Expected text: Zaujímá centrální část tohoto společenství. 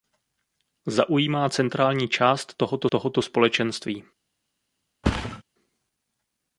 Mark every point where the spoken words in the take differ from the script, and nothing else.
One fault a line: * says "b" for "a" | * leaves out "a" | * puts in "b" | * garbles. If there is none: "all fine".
* puts in "tohoto"